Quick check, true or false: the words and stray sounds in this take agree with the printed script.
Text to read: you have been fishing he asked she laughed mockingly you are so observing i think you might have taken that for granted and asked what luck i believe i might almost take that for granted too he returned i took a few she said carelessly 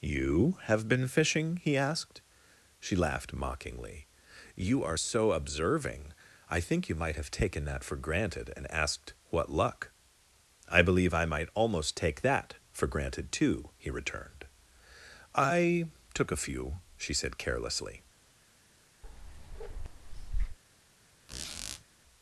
false